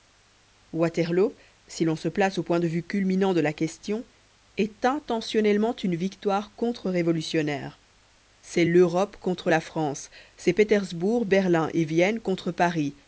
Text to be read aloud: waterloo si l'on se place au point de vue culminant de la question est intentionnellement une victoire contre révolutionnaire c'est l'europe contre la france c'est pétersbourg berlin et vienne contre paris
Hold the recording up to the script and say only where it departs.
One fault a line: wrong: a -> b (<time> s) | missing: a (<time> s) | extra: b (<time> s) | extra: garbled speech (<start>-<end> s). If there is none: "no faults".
no faults